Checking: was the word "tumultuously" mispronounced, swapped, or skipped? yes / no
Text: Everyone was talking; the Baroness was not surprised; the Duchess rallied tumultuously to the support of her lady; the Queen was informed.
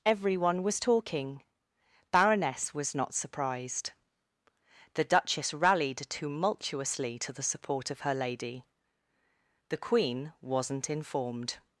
no